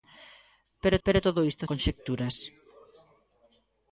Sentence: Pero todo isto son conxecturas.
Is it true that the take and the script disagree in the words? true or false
true